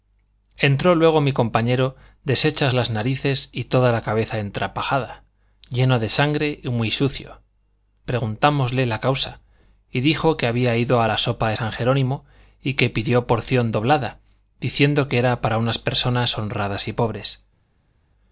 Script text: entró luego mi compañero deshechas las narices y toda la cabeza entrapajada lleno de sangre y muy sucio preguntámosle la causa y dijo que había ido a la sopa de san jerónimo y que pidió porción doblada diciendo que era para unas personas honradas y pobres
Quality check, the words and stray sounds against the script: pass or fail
pass